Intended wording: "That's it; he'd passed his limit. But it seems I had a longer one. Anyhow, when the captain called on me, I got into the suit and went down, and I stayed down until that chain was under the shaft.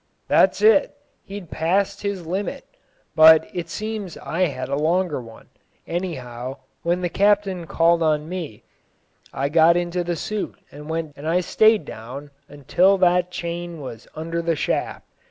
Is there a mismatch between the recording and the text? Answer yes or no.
yes